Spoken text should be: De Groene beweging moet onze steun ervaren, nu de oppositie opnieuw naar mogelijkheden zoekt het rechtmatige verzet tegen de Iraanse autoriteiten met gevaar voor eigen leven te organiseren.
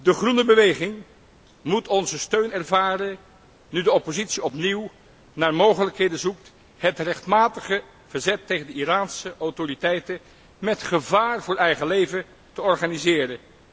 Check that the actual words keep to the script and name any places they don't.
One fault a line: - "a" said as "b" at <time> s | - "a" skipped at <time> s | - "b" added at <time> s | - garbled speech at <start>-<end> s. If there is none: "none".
none